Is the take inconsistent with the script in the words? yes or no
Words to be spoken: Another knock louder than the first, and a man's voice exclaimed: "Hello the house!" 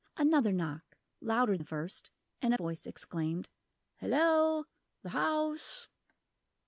yes